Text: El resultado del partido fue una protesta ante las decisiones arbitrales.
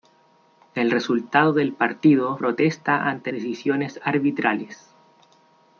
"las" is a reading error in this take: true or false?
true